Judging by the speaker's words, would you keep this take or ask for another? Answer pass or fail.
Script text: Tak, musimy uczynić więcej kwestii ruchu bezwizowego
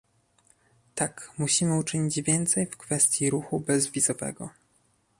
fail